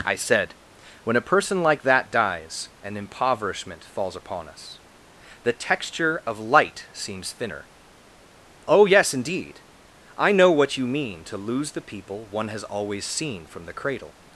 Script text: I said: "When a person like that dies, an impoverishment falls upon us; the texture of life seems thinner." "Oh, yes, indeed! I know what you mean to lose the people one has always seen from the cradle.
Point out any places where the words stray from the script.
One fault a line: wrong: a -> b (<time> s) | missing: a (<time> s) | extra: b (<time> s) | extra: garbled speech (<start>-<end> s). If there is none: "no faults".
wrong: life -> light (6.4 s)